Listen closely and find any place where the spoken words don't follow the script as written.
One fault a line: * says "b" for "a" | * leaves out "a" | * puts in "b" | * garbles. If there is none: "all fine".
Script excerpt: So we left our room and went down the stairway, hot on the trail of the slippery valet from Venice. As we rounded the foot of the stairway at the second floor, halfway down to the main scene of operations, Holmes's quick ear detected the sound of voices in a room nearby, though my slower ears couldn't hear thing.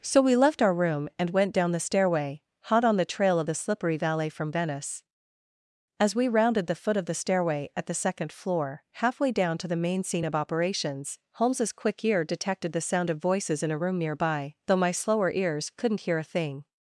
* puts in "a"